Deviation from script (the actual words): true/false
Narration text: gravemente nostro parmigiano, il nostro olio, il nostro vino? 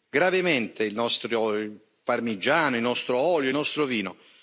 true